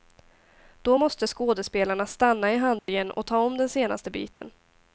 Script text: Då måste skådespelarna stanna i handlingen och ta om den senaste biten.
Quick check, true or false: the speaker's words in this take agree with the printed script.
true